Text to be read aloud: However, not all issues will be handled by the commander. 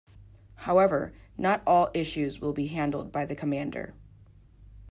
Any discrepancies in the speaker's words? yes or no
no